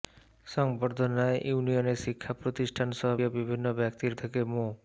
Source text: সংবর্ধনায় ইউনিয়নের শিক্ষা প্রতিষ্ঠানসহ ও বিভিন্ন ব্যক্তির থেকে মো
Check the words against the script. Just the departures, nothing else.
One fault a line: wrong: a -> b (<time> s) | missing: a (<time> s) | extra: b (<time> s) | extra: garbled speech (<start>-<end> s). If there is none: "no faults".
no faults